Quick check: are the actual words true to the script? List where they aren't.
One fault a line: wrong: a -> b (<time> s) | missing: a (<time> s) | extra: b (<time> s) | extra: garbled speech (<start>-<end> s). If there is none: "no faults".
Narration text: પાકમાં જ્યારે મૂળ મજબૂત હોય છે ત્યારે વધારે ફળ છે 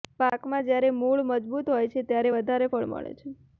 extra: મળે (2.9 s)